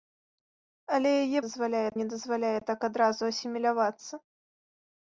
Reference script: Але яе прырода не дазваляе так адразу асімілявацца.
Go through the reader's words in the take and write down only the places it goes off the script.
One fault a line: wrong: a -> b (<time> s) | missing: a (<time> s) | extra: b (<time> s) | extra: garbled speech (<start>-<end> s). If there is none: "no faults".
wrong: прырода -> дазваляе (1.4 s)